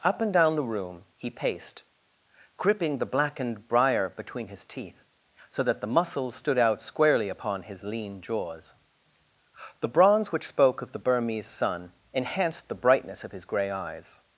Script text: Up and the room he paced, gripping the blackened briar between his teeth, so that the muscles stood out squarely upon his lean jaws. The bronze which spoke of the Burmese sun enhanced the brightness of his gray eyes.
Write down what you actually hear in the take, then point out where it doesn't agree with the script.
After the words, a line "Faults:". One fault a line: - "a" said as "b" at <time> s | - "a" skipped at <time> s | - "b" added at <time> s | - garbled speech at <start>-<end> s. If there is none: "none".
Up and down the room he paced, gripping the blackened briar between his teeth, so that the muscles stood out squarely upon his lean jaws. The bronze which spoke of the Burmese sun enhanced the brightness of his gray eyes.
Faults:
- "down" added at 0.3 s